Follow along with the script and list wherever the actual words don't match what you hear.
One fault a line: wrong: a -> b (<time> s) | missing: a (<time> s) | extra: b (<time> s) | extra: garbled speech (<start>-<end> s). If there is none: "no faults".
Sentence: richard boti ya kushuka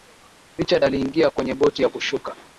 extra: aliingia kwenye (0.8 s)